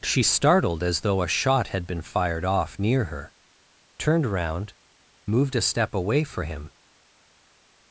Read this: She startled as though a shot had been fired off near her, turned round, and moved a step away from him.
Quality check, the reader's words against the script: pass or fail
fail